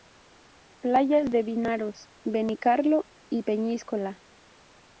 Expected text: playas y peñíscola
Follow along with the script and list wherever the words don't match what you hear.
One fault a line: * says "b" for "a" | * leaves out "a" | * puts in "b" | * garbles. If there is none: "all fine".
* puts in "de vinaroz benicarló"